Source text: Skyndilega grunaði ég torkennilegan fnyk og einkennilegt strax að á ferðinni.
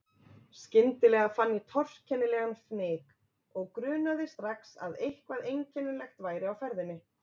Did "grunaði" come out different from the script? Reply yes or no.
yes